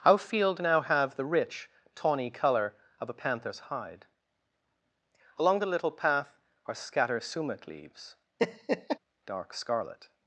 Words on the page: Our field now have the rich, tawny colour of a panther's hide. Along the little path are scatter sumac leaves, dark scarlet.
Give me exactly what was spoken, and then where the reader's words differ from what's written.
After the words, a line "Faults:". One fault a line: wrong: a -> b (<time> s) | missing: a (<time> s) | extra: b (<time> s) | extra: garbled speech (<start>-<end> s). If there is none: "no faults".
Our field now have the rich, tawny colour of a panther's hide. Along the little path are scatter sumac leaves, dark scarlet.
Faults:
no faults